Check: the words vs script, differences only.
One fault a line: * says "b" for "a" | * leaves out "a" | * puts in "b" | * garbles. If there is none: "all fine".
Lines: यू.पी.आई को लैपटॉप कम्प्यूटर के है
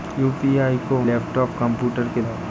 all fine